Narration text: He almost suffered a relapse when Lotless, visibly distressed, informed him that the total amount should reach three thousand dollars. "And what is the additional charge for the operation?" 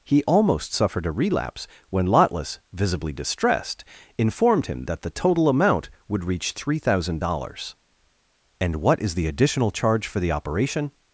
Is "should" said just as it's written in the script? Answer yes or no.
no